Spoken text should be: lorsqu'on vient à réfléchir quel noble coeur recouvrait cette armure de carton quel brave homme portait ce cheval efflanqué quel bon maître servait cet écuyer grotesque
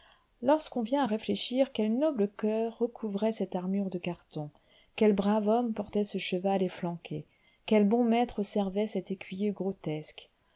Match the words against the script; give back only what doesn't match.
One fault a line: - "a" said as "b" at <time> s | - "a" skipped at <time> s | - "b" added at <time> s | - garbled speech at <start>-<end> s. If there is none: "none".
none